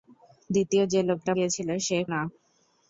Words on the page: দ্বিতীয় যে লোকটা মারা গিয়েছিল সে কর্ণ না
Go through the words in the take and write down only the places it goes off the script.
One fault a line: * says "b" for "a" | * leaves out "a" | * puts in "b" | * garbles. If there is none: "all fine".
* leaves out "মারা"
* leaves out "কর্ণ"